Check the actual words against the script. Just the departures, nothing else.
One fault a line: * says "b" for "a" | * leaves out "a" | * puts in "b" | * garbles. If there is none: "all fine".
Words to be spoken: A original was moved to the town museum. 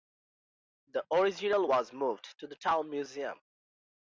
* says "The" for "A"